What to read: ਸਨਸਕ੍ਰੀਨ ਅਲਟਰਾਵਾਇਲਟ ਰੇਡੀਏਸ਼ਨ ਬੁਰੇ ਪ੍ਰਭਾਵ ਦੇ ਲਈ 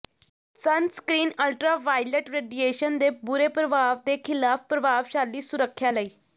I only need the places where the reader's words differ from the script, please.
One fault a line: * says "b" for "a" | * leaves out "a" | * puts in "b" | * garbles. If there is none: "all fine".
* puts in "ਦੇ"
* puts in "ਖਿਲਾਫ ਪ੍ਰਭਾਵਸ਼ਾਲੀ ਸੁਰੱਖਿਆ"